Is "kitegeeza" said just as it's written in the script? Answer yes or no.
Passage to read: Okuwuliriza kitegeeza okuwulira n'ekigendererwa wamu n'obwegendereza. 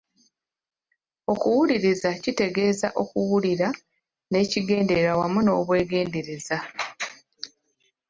yes